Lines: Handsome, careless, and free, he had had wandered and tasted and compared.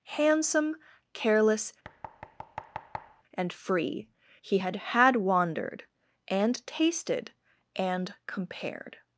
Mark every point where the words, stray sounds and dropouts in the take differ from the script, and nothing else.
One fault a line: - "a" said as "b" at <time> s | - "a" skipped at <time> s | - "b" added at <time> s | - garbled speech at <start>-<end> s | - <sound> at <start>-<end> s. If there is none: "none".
- thud at 1.8-3.2 s